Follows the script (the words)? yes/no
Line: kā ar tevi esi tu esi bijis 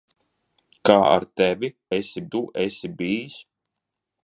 yes